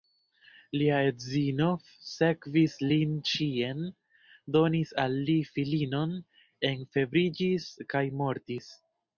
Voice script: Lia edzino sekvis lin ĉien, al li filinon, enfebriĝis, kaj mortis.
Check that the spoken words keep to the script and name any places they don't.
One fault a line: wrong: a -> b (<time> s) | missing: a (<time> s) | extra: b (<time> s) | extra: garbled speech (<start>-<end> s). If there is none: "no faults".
extra: donis (4.6 s)